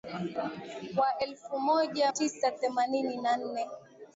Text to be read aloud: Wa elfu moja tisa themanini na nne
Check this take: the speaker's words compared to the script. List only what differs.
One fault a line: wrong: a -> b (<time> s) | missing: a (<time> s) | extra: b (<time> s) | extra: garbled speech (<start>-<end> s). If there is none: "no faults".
no faults